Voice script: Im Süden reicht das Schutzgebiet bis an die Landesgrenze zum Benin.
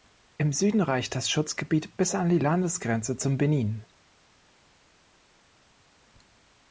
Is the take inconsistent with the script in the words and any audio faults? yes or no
no